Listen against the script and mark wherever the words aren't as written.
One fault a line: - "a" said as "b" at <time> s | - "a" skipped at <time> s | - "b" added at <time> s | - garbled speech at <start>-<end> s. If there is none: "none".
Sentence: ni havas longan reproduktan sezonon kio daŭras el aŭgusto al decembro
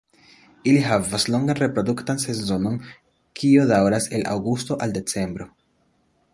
- "ni" said as "ili" at 0.7 s